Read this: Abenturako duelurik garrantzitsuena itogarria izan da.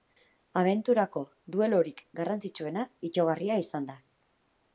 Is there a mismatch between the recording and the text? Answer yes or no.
no